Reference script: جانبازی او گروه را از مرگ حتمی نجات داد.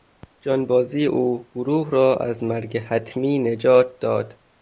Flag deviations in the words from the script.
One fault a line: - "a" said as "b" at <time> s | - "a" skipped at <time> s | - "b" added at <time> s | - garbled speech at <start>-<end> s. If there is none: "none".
none